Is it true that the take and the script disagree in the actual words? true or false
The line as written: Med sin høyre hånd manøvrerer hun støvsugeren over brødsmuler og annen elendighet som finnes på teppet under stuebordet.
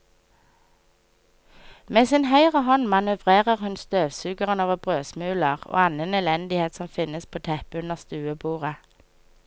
false